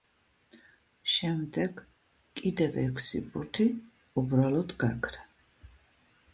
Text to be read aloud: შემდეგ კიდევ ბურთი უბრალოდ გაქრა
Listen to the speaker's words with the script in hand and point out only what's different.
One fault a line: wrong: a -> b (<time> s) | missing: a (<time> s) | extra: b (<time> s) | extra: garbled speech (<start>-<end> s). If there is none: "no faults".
extra: ექვსი (2.9 s)